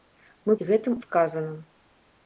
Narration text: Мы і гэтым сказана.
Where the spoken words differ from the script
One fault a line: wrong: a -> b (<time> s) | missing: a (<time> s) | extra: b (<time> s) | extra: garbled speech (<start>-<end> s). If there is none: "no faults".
no faults